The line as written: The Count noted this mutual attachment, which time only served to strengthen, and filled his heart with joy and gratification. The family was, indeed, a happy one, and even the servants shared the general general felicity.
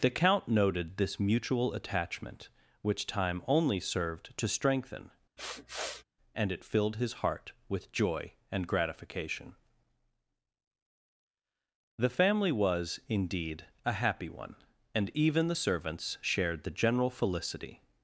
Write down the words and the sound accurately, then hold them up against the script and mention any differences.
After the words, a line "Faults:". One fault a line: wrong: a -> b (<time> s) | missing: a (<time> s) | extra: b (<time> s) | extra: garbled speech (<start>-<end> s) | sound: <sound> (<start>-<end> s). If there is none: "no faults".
The Count noted this mutual attachment, which time only served to strengthen, and it filled his heart with joy and gratification. The family was, indeed, a happy one, and even the servants shared the general felicity.
Faults:
sound: sniff (5.4-6.0 s)
extra: it (6.5 s)
missing: general (17.1 s)